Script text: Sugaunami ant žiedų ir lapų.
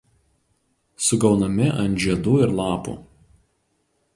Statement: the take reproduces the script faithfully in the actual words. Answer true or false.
true